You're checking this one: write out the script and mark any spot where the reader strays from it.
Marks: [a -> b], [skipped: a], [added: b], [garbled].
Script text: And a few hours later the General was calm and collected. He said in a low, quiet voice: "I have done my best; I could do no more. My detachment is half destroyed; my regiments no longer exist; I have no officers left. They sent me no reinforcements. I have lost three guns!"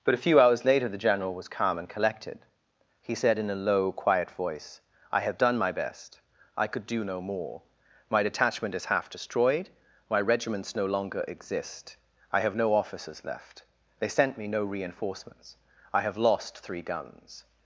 [And -> But] a few hours later the General was calm and collected. He said in a low, quiet voice: "I have done my best; I could do no more. My detachment is half destroyed; my regiments no longer exist; I have no officers left. They sent me no reinforcements. I have lost three guns!"